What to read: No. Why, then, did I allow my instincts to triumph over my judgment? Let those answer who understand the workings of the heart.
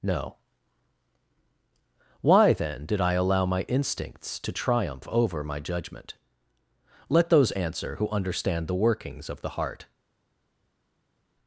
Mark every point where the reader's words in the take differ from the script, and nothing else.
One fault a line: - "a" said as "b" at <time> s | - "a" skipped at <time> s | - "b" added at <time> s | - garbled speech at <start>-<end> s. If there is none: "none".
none